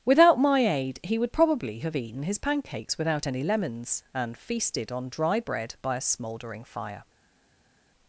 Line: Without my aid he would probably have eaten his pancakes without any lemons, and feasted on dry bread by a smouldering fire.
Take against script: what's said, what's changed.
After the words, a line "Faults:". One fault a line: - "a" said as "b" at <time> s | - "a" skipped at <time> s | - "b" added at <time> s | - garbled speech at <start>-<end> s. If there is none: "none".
Without my aid he would probably have eaten his pancakes without any lemons, and feasted on dry bread by a smouldering fire.
Faults:
none